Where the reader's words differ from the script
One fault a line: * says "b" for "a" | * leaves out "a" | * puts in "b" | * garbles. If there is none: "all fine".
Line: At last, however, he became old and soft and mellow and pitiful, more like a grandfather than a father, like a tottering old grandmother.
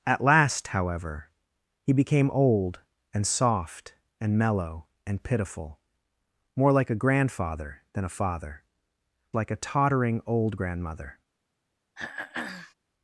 all fine